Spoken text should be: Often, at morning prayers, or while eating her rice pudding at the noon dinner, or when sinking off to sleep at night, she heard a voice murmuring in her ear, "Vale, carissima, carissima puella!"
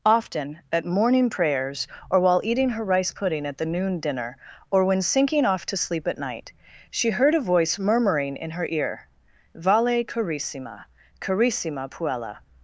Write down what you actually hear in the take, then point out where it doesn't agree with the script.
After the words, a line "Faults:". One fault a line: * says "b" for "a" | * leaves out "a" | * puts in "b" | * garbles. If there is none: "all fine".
Often, at morning prayers, or while eating her rice pudding at the noon dinner, or when sinking off to sleep at night, she heard a voice murmuring in her ear, "Vale, carissima, carissima puella!"
Faults:
all fine